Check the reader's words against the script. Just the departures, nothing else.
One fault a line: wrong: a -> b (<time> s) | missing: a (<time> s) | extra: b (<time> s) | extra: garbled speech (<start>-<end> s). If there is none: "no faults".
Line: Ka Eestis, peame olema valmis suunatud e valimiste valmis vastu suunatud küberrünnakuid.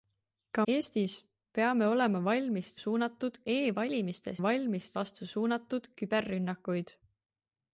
no faults